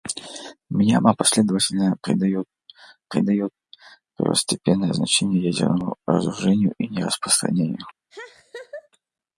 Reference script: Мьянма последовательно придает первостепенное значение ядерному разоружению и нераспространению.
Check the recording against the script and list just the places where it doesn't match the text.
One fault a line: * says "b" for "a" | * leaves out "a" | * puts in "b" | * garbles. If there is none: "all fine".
* puts in "придает"